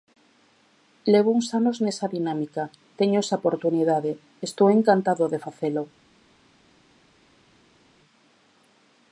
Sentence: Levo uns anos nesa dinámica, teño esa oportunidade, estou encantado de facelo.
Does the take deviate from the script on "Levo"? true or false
false